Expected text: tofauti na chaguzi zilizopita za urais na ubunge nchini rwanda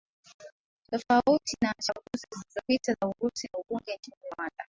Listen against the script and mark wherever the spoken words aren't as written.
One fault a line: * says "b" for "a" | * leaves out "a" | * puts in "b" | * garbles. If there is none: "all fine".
all fine